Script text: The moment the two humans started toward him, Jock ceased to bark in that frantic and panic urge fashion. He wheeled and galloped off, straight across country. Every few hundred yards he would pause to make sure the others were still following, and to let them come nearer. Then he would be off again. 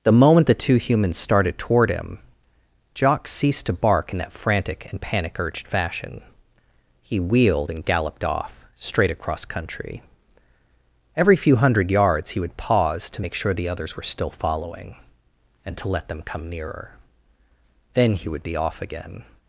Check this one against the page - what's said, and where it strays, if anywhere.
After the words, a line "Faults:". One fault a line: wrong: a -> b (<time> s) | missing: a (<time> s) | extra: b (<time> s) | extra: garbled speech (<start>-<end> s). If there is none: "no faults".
The moment the two humans started toward him, Jock ceased to bark in that frantic and panic urged fashion. He wheeled and galloped off, straight across country. Every few hundred yards he would pause to make sure the others were still following, and to let them come nearer. Then he would be off again.
Faults:
wrong: urge -> urged (5.4 s)